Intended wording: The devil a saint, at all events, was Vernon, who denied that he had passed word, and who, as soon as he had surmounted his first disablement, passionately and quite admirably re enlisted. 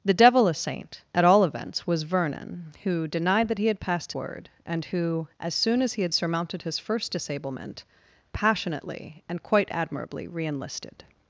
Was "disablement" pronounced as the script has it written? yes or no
yes